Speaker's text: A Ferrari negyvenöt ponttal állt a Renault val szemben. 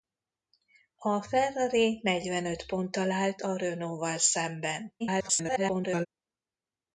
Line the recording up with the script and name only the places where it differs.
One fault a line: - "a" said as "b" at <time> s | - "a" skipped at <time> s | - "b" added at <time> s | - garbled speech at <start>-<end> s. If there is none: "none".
- garbled speech at 5.0-6.1 s